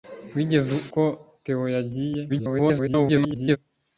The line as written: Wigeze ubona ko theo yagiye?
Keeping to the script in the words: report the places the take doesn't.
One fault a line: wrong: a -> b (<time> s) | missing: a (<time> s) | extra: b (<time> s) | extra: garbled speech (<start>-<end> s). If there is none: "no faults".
missing: ubona (0.8 s)
extra: garbled speech (2.3-3.6 s)